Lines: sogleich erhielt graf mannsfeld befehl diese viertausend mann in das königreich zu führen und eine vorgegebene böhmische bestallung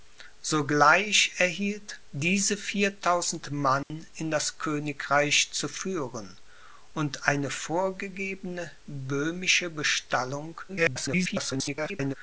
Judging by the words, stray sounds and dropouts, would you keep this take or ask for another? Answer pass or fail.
fail